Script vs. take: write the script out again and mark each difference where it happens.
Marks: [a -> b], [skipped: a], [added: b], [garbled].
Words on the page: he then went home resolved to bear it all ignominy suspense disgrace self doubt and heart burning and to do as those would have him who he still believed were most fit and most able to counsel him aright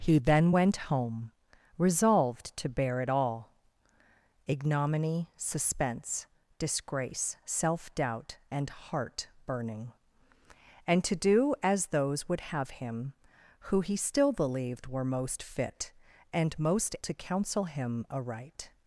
he then went home resolved to bear it all ignominy suspense disgrace self doubt and heart burning and to do as those would have him who he still believed were most fit and most [skipped: able] to counsel him aright